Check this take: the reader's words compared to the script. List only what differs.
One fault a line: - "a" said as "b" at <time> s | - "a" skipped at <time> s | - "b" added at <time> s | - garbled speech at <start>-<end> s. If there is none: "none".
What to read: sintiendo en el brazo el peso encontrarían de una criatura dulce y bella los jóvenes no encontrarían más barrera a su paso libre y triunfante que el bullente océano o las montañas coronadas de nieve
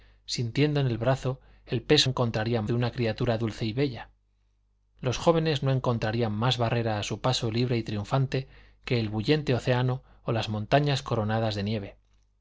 none